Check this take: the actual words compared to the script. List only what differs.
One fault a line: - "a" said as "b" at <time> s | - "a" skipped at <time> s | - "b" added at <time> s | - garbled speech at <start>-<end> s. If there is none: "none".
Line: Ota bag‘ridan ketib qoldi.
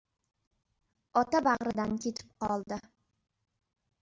none